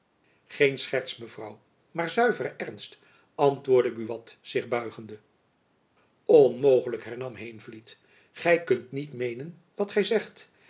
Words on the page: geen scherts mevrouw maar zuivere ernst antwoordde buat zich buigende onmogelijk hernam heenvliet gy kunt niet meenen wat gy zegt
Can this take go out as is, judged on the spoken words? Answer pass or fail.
pass